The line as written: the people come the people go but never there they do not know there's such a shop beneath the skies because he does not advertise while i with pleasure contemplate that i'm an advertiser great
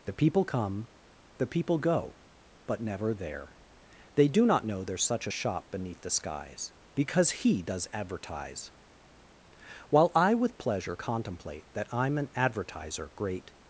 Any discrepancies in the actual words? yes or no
yes